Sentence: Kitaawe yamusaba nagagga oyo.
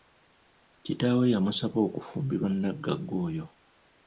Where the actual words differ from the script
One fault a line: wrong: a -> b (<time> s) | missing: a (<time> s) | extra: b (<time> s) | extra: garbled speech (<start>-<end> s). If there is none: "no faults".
extra: okufumbirwa (1.9 s)